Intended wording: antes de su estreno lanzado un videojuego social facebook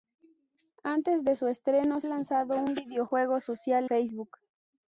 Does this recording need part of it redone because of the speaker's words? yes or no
no